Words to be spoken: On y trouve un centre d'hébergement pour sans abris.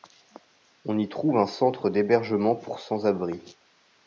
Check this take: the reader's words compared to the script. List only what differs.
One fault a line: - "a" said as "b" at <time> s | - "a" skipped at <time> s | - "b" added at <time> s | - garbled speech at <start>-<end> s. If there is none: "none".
none